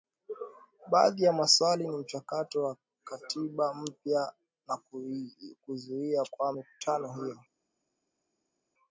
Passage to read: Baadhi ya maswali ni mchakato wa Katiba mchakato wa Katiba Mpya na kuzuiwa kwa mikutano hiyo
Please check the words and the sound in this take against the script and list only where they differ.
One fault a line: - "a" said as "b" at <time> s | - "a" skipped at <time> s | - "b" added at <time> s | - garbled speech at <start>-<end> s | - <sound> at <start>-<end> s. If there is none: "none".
- "mchakato wa Katiba" skipped at 3.7 s